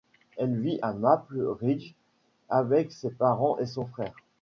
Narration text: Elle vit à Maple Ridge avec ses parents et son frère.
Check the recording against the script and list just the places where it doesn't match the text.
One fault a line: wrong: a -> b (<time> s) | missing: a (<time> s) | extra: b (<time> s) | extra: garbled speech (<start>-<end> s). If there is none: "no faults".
no faults